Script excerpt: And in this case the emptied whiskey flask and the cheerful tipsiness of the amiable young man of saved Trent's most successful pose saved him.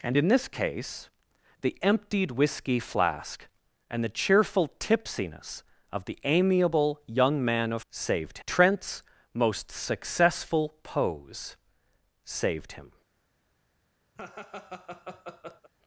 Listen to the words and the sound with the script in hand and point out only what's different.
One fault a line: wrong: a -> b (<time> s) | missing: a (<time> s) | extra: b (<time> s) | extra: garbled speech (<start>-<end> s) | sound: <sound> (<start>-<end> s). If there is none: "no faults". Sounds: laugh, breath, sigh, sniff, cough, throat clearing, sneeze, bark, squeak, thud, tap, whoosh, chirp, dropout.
sound: laugh (14.2-15.7 s)